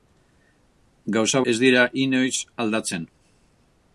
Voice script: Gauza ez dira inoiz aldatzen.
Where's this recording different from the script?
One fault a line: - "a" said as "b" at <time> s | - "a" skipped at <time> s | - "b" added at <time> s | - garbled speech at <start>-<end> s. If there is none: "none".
none